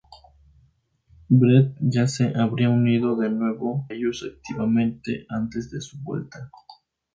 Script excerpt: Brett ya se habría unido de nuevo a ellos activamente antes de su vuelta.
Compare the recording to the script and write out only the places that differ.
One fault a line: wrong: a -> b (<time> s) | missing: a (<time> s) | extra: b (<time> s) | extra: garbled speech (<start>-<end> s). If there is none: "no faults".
missing: a (3.9 s)